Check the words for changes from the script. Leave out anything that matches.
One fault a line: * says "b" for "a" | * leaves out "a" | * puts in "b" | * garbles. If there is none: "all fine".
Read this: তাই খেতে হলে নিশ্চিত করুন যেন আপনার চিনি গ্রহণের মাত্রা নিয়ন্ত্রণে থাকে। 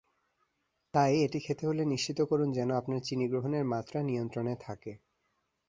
* puts in "এটি"